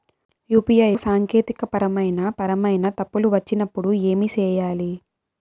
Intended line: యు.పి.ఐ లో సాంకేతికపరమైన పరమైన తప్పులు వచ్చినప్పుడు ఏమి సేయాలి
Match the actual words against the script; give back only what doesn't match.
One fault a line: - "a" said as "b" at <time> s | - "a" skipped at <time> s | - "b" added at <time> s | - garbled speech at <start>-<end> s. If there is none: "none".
- "లో" skipped at 0.9 s